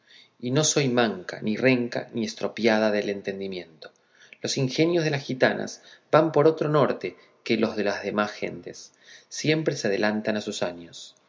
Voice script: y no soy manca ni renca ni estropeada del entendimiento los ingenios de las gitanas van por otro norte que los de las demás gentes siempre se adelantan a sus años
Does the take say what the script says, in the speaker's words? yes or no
yes